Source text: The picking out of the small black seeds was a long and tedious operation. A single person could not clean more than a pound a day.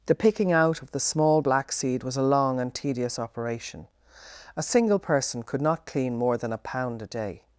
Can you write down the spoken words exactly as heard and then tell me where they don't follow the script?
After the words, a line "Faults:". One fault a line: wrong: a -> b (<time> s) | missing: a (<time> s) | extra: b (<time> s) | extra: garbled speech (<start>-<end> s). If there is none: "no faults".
The picking out of the small black seed was a long and tedious operation. A single person could not clean more than a pound a day.
Faults:
wrong: seeds -> seed (1.7 s)